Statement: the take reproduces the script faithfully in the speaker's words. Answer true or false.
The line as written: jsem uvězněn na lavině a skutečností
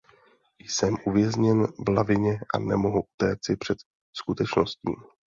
false